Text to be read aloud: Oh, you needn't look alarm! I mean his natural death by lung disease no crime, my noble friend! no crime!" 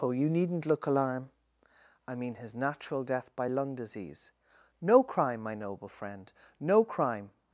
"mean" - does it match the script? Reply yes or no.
yes